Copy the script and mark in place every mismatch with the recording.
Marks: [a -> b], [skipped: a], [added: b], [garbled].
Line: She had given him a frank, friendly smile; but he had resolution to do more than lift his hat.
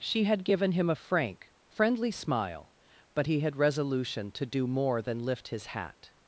She had given him a frank, friendly smile; but he had resolution to do more than lift his hat.